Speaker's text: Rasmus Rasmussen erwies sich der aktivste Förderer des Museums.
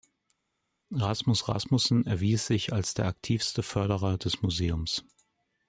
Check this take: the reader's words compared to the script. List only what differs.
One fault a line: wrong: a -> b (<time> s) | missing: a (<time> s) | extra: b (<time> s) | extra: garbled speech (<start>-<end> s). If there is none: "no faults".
extra: als (2.7 s)